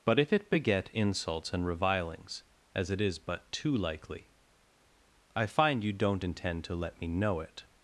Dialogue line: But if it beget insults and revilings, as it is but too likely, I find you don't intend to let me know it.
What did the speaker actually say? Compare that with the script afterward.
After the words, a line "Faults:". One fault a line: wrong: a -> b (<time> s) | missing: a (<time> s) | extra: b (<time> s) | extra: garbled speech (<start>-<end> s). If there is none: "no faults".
But if it beget insults and revilings, as it is but too likely, I find you don't intend to let me know it.
Faults:
no faults